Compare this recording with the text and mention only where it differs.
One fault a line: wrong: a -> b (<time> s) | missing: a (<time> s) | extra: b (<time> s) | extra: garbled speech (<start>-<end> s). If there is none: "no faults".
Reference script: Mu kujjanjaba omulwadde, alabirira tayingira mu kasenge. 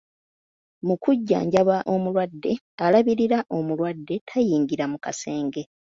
extra: omulwadde (3.6 s)